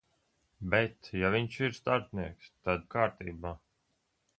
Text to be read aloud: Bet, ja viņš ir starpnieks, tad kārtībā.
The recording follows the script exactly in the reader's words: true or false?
true